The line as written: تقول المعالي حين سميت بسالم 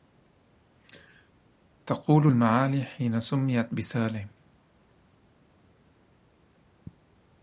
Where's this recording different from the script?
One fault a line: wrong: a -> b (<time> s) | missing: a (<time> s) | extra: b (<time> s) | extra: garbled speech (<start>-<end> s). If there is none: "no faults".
no faults